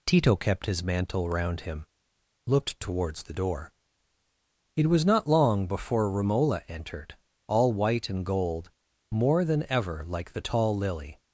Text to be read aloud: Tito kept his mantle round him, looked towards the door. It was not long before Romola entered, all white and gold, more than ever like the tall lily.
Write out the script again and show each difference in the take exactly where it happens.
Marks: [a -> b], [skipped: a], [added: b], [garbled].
Tito kept his mantle round him, looked towards the door. It was not long before Romola entered, all white and gold, more than ever like the tall lily.